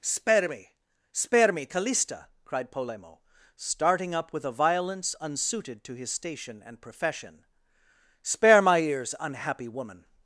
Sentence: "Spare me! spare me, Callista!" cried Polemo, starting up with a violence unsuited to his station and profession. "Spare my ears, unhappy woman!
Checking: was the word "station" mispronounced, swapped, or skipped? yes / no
no